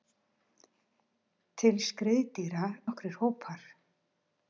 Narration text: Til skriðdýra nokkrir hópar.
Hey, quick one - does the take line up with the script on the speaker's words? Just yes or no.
yes